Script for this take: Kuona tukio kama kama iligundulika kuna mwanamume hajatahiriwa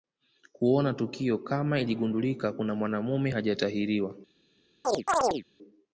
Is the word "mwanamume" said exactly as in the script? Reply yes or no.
yes